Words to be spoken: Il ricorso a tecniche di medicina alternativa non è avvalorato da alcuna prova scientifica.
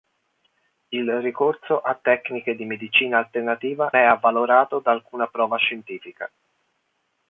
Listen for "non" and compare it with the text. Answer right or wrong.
wrong